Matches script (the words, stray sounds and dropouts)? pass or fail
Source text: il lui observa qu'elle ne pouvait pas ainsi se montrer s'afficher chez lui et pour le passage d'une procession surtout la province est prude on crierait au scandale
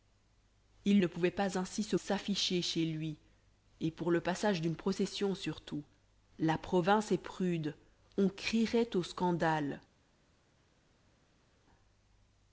fail